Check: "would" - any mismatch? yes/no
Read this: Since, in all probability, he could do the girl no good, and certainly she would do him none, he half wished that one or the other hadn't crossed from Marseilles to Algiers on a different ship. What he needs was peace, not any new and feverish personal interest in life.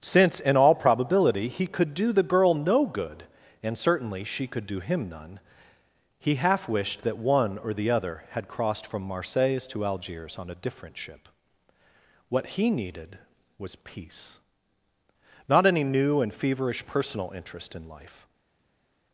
yes